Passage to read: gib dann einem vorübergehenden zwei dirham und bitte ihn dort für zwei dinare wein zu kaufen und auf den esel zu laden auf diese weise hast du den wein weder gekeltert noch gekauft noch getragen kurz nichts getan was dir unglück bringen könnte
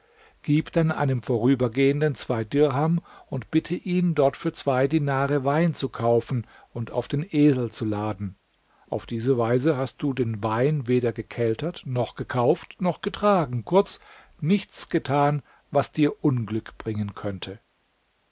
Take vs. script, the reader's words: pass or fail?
pass